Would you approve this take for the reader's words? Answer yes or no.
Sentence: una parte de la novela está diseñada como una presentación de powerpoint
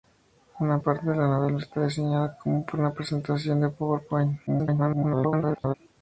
no